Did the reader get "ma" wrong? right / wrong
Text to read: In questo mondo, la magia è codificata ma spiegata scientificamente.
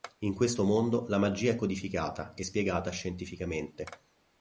wrong